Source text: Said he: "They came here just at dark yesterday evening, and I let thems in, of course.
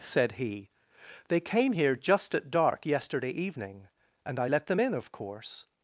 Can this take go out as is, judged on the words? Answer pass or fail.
fail